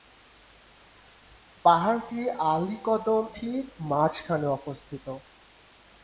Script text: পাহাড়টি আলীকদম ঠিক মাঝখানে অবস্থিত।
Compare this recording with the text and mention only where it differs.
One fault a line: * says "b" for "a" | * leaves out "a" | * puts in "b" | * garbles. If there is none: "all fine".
all fine